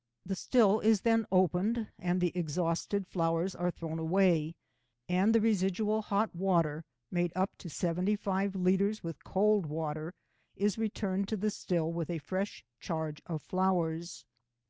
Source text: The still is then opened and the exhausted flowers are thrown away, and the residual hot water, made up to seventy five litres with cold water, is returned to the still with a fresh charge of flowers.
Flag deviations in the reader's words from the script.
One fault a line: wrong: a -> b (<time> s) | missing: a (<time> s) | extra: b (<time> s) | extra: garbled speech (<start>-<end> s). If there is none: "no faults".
no faults